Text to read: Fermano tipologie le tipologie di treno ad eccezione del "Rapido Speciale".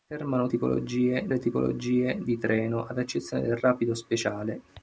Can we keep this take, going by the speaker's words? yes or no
yes